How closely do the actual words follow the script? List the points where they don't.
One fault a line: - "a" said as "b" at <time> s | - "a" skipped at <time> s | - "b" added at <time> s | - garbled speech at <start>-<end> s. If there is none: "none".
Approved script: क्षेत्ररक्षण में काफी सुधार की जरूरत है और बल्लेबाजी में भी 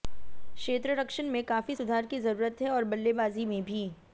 none